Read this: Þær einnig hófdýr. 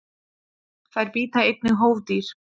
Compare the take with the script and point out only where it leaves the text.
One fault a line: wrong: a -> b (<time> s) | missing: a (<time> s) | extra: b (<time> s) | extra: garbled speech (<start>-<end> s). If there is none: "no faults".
extra: bíta (1.2 s)